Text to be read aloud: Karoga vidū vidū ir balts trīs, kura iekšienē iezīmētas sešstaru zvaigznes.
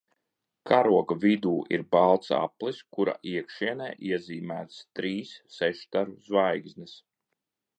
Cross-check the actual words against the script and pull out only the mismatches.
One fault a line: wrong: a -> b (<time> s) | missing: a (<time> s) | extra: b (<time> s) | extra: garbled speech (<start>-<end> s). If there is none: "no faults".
missing: vidū (1.5 s)
wrong: trīs -> aplis (2.3 s)
extra: trīs (5.0 s)